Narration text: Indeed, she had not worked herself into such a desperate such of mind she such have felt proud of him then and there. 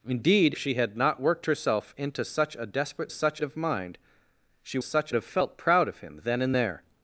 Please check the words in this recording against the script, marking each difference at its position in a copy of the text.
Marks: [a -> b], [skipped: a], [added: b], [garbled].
Indeed, she had not worked herself into such a desperate such of mind she such have felt proud of him then and there.